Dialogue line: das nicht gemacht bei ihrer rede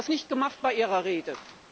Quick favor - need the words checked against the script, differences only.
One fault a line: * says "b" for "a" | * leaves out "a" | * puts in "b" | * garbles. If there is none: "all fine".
all fine